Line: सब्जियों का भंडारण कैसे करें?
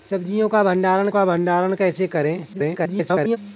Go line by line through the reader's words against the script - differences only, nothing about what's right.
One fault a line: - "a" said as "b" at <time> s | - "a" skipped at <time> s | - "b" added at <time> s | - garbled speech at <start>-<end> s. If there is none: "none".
- "का भंडारण" added at 1.1 s
- garbled speech at 2.5-3.4 s